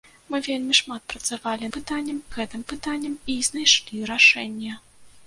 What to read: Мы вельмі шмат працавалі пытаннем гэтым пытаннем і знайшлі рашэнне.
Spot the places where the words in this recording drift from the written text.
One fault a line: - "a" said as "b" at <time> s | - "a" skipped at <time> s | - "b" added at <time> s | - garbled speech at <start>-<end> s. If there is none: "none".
none